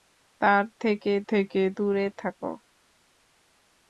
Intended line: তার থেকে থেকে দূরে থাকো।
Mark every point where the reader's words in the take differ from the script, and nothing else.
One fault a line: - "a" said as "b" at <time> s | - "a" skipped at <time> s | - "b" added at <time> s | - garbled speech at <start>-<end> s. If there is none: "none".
none